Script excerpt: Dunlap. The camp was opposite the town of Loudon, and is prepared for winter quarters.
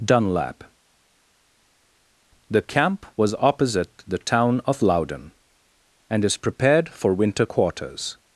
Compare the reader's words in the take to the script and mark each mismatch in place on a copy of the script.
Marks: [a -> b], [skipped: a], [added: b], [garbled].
Dunlap. The camp was opposite the town of Loudon, and is prepared for winter quarters.